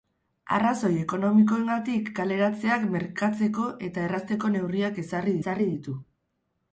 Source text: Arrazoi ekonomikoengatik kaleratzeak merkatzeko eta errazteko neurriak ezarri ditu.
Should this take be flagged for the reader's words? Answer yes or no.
yes